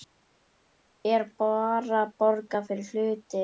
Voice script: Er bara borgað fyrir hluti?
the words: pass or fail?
pass